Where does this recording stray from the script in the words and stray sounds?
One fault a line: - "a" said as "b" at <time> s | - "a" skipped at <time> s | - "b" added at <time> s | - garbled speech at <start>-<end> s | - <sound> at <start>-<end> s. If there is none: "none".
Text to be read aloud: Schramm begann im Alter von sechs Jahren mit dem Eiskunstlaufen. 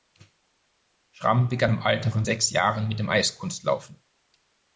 none